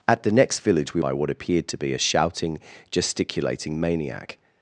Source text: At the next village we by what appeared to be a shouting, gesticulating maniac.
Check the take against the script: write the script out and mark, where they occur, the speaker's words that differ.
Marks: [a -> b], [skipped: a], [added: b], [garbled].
At the next village we by what appeared to be a shouting, gesticulating maniac.